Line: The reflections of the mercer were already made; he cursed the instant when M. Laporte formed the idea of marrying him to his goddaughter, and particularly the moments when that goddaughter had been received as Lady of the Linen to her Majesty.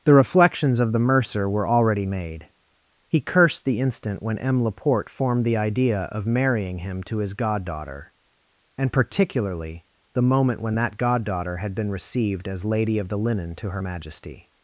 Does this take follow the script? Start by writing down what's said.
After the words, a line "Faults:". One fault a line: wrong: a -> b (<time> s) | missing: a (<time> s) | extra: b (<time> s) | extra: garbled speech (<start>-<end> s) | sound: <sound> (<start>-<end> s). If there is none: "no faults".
The reflections of the mercer were already made; he cursed the instant when M. Laporte formed the idea of marrying him to his goddaughter, and particularly the moment when that goddaughter had been received as Lady of the Linen to her Majesty.
Faults:
wrong: moments -> moment (10.2 s)